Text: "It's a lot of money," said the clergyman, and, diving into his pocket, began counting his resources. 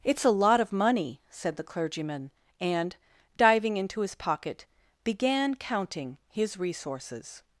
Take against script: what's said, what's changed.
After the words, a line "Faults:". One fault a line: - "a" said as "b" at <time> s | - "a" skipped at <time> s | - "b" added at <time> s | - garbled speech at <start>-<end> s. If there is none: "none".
"It's a lot of money," said the clergyman, and, diving into his pocket, began counting his resources.
Faults:
none